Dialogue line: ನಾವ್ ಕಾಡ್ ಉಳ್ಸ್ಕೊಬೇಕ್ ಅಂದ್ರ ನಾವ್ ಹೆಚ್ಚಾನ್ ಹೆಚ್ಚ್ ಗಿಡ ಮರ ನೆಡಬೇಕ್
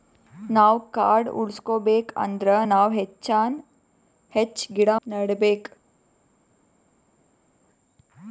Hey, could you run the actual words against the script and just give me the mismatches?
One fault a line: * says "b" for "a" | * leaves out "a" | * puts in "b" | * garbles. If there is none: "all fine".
* leaves out "ಮರ"